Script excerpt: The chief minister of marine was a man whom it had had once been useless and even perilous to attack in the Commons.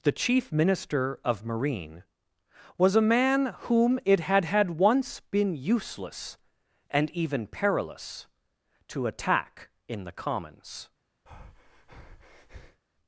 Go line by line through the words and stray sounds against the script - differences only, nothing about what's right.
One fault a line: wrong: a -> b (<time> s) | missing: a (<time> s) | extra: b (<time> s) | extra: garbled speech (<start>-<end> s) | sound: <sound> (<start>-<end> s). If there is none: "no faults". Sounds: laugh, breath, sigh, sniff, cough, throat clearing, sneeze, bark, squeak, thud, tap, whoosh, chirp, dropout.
sound: breath (11.3-12.8 s)